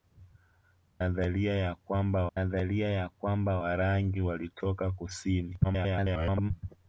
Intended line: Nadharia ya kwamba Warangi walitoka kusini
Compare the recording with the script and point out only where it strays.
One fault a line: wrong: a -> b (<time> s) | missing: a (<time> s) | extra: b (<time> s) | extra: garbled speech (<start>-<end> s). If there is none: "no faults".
extra: nadharia ya kwamba (2.4 s)
extra: garbled speech (5.6-6.5 s)